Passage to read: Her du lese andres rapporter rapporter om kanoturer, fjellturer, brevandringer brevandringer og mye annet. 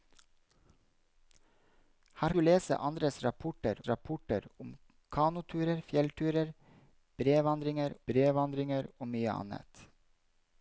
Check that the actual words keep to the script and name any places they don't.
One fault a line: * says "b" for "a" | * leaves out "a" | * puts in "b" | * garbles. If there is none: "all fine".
all fine